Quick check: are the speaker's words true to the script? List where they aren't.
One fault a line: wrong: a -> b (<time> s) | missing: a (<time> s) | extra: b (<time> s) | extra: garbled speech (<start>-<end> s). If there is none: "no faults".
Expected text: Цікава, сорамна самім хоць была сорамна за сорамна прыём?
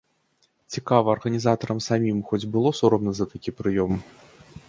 wrong: сорамна -> арганізатарам (1.1 s)
wrong: была -> было (2.6 s)
wrong: сорамна -> такі (3.3 s)